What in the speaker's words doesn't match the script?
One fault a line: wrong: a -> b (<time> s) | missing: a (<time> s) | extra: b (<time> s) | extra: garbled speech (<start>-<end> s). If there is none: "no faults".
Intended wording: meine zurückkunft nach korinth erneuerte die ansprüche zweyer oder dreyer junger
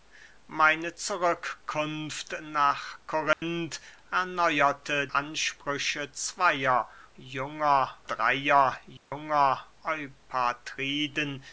missing: die (5.1 s)
wrong: oder -> junger (7.2 s)